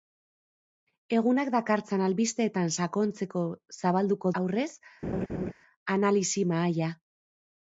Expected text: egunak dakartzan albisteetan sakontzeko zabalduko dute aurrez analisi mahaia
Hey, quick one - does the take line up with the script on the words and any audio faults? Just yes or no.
no